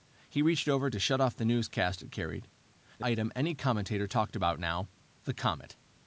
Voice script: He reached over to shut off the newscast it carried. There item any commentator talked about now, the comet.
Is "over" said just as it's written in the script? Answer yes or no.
yes